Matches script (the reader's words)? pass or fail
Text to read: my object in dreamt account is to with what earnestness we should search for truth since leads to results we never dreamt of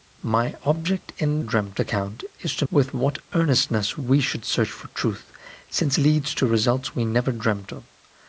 pass